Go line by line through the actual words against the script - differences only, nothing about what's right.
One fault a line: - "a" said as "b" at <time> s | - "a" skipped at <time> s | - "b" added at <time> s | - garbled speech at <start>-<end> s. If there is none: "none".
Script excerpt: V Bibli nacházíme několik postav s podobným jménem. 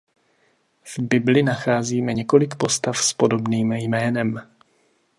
none